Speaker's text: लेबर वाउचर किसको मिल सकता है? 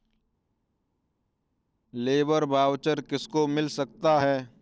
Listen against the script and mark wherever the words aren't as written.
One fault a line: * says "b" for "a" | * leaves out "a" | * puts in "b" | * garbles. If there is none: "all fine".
all fine